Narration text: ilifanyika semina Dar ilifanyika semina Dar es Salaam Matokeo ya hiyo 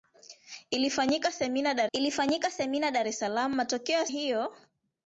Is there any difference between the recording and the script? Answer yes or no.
no